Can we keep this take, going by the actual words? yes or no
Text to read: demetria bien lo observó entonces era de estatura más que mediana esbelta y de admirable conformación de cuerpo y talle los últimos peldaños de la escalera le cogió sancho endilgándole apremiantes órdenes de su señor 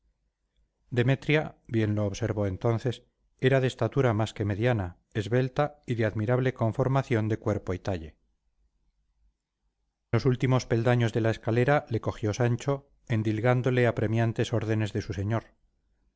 yes